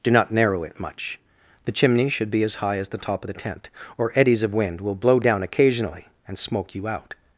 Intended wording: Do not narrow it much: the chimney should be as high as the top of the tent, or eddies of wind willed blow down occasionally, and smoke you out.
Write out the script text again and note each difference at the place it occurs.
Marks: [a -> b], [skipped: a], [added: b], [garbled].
Do not narrow it much: the chimney should be as high as the top of the tent, or eddies of wind [willed -> will] blow down occasionally, and smoke you out.